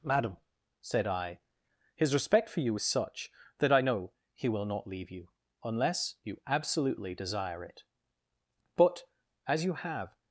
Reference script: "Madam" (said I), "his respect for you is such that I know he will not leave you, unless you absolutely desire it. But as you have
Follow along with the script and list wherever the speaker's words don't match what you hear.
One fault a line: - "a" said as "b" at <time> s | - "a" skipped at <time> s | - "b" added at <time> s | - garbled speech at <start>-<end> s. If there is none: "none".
none